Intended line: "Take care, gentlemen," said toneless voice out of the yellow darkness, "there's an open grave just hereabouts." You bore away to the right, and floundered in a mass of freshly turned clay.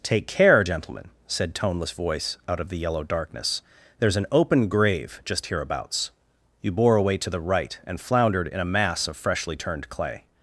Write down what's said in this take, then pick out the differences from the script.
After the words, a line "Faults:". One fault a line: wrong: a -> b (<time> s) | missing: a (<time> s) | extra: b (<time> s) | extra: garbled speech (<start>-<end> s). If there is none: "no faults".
"Take care, gentlemen," said toneless voice out of the yellow darkness, "there's an open grave just hereabouts." You bore away to the right, and floundered in a mass of freshly turned clay.
Faults:
no faults